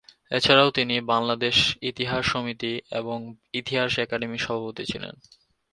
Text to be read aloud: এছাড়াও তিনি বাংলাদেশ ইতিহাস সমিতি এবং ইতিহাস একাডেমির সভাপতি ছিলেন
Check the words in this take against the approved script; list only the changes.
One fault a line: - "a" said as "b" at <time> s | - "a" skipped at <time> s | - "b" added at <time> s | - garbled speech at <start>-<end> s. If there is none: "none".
none